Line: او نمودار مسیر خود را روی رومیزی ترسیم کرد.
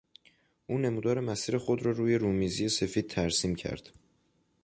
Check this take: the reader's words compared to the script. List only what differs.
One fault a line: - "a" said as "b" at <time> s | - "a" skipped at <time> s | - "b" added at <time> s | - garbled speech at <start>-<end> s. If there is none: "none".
- "سفید" added at 2.7 s